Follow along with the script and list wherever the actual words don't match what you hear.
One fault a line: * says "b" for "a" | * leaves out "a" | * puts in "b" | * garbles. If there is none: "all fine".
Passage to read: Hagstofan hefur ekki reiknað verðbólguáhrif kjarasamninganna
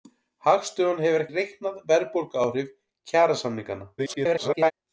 * leaves out "ekki"
* garbles